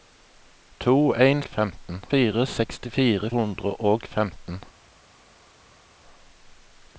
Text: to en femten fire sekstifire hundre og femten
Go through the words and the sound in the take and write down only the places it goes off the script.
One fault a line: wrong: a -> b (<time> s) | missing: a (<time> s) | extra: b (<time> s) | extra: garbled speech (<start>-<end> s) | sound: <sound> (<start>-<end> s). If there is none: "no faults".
no faults